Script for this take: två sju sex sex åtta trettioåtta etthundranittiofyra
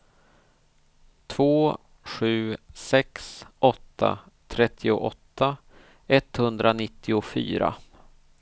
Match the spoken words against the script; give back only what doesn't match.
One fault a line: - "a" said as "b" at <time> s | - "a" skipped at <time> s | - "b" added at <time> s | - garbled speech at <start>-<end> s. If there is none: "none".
- "sex" skipped at 3.5 s